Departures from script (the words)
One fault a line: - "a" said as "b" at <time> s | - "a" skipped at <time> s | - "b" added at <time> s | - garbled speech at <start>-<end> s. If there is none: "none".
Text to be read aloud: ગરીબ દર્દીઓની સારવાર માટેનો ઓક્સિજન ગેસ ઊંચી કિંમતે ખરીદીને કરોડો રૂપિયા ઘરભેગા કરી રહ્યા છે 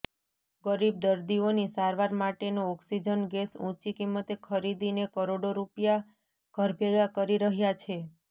none